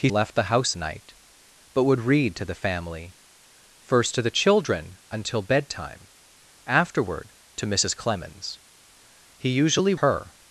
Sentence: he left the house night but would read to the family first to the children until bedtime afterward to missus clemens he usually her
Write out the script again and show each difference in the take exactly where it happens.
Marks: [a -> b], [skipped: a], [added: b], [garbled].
he left the house night but would read to the family first to the children until bedtime afterward to missus clemens he usually her